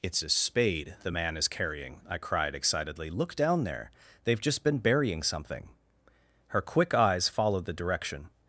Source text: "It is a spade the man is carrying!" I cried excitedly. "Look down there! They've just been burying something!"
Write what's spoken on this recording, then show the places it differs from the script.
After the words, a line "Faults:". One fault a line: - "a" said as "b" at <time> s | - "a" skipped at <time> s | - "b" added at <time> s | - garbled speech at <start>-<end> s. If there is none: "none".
"It is a spade the man is carrying!" I cried excitedly. "Look down there! They've just been burying something!" Her quick eyes followed the direction
Faults:
- "Her quick eyes followed the direction" added at 6.5 s